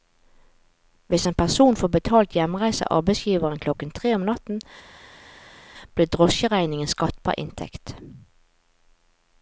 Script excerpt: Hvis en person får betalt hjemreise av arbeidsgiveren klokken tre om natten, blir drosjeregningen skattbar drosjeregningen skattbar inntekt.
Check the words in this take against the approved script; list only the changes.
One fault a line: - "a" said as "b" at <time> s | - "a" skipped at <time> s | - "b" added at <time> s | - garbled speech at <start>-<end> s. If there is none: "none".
- "drosjeregningen skattbar" skipped at 7.4 s